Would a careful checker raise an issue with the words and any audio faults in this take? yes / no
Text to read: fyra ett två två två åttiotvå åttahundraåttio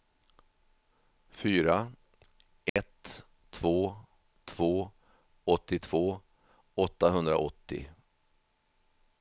yes